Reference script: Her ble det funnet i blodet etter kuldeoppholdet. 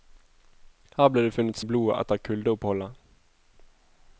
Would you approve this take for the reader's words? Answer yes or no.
yes